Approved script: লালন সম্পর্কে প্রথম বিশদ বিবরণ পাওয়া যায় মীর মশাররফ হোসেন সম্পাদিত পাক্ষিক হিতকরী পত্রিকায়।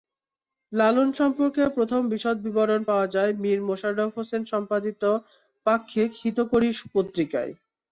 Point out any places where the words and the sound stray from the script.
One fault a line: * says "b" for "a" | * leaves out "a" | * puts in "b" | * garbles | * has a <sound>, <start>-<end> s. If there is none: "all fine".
all fine